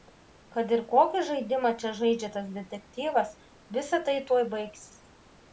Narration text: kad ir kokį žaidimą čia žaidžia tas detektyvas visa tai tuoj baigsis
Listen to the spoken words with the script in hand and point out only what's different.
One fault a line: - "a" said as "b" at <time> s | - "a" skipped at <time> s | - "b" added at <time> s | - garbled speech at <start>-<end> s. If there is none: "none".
none